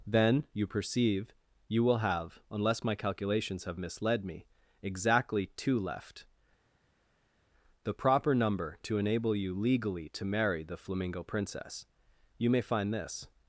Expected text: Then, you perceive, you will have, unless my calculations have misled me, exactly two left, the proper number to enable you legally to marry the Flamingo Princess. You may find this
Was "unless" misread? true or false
false